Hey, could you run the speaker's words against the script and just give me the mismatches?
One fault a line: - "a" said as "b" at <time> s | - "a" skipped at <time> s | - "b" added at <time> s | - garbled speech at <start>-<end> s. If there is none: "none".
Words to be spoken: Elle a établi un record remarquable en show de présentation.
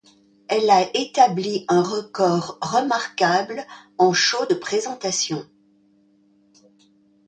none